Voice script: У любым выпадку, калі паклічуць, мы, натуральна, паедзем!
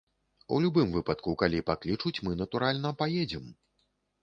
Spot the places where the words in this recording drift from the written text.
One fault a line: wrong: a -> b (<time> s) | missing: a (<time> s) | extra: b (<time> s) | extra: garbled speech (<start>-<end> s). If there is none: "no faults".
no faults